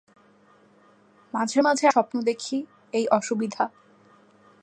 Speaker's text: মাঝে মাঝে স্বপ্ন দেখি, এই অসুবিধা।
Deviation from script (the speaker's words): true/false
false